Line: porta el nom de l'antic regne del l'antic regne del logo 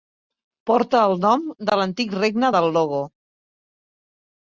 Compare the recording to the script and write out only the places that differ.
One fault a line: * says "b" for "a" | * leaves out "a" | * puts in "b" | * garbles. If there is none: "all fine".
* leaves out "l'antic regne del"